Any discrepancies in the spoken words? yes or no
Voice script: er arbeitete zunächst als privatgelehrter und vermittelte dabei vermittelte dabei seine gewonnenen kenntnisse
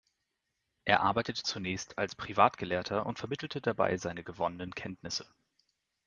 yes